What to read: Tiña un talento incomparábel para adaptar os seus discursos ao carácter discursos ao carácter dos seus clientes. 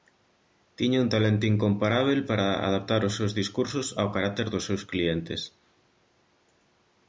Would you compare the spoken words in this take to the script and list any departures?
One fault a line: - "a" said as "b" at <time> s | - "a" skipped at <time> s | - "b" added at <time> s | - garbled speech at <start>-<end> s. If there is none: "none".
- "discursos ao carácter" skipped at 4.5 s